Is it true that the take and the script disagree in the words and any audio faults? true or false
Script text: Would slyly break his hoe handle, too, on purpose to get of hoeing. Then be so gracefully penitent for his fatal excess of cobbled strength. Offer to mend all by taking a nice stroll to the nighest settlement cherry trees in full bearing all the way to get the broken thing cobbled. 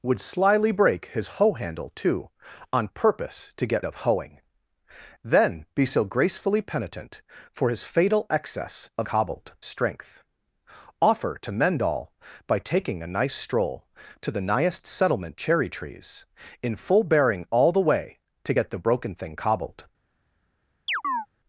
true